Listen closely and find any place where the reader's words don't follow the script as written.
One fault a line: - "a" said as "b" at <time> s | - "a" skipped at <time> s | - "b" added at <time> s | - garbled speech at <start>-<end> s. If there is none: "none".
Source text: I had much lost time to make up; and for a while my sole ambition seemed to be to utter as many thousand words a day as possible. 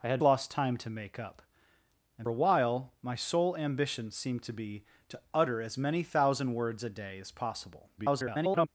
- "much" skipped at 0.2 s
- "for" skipped at 2.3 s
- garbled speech at 8.0-8.7 s